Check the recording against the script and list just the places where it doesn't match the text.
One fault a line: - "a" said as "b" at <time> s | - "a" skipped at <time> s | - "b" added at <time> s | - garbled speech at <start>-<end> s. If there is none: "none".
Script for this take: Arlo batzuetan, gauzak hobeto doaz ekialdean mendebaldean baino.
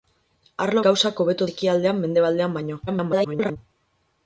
- "batzuetan" skipped at 0.8 s
- "doaz" skipped at 1.5 s
- garbled speech at 2.9-3.6 s